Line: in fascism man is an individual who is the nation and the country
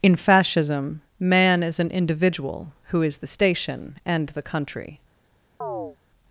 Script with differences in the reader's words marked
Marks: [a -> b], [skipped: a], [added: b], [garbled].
in fascism man is an individual who is the [nation -> station] and the country